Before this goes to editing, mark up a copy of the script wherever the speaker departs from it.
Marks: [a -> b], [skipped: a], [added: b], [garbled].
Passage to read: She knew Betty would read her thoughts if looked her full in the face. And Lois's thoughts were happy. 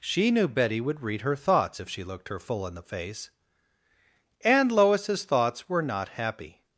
She knew Betty would read her thoughts if [added: she] looked her full in the face. And Lois's thoughts were [added: not] happy.